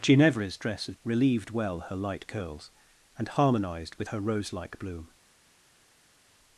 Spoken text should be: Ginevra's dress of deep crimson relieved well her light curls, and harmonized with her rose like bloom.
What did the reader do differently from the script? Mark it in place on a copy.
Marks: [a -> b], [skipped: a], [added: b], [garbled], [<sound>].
Ginevra's dress of [skipped: deep crimson] relieved well her light curls, and harmonized with her rose like bloom.